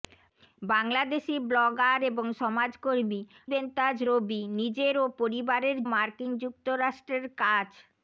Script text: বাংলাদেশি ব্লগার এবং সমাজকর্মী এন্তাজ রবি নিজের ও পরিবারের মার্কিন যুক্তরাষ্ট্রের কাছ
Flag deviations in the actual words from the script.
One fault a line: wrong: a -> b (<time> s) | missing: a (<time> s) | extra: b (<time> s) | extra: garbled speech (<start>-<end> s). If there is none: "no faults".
no faults